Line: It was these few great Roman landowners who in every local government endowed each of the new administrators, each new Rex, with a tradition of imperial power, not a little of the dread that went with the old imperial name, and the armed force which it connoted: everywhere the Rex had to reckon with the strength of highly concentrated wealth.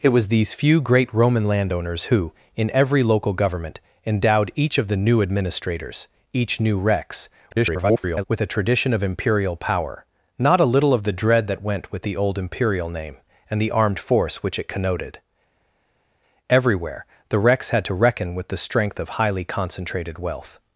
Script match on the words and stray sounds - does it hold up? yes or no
no